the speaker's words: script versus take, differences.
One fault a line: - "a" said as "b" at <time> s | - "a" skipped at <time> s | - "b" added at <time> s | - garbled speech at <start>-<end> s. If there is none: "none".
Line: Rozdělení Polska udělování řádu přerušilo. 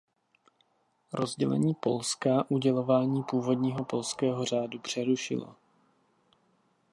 - "původního polského" added at 3.2 s